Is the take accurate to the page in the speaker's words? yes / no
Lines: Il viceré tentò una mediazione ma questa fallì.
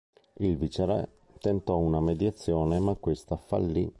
yes